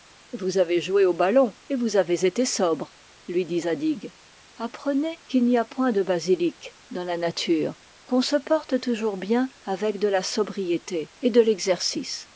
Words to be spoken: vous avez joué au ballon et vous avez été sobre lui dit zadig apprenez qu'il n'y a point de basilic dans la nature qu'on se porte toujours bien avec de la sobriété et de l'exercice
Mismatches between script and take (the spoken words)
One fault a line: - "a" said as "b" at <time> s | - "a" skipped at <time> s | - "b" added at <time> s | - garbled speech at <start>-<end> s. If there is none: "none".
none